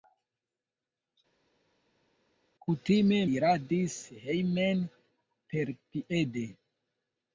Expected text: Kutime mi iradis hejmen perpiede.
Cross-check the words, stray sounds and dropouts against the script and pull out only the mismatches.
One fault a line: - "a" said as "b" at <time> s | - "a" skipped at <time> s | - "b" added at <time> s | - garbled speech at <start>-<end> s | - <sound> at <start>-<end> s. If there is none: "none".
- "mi" skipped at 3.2 s